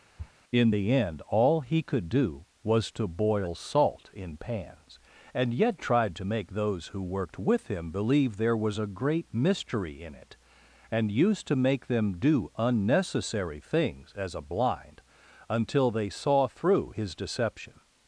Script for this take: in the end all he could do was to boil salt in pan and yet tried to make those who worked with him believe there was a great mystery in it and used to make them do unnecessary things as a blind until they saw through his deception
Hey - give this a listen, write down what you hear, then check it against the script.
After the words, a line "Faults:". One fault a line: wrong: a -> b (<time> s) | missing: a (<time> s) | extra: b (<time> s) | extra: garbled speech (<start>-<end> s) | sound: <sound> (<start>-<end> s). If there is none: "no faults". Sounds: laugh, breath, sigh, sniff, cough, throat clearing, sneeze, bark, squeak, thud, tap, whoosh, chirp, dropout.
in the end all he could do was to boil salt in pans and yet tried to make those who worked with him believe there was a great mystery in it and used to make them do unnecessary things as a blind until they saw through his deception
Faults:
sound: sniff (0.2-0.3 s)
wrong: pan -> pans (4.4 s)